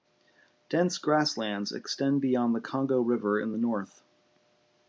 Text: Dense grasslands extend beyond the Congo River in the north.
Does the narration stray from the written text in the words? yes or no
no